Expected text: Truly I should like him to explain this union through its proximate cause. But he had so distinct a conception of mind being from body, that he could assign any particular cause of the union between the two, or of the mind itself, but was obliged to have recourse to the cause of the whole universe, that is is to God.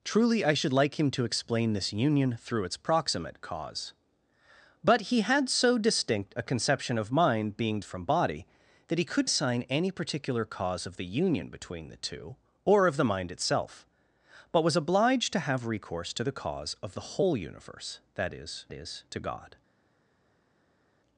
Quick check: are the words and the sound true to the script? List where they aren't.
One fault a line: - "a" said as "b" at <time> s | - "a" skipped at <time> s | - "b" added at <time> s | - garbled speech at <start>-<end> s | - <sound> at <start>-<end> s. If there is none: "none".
none